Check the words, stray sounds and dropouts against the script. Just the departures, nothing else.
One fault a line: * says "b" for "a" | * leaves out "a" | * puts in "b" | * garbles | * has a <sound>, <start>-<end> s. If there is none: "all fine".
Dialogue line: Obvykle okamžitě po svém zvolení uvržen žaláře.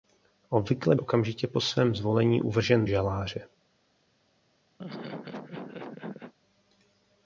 * has a laugh, 4.8-6.3 s